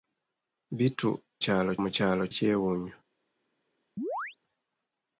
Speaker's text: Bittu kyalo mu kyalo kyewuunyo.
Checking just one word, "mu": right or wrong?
right